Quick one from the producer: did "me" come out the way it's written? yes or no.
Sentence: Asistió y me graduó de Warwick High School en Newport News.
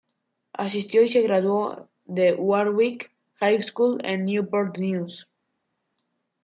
no